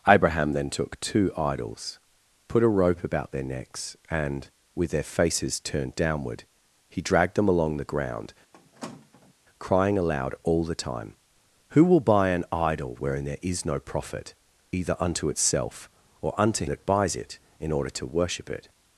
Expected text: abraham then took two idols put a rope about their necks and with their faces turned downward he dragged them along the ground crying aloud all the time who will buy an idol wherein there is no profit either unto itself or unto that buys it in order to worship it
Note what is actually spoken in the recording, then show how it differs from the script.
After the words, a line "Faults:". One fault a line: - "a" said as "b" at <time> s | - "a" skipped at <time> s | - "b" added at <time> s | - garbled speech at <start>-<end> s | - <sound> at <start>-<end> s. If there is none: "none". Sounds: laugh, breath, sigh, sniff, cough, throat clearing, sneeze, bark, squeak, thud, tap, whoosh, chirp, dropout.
abraham then took two idols put a rope about their necks and with their faces turned downward he dragged them along the ground crying aloud all the time who will buy an idol wherein there is no profit either unto itself or unto that buys it in order to worship it
Faults:
- squeak at 8.5-9.3 s